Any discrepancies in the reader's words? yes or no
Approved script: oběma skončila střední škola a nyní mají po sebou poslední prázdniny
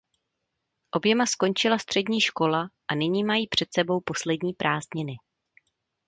yes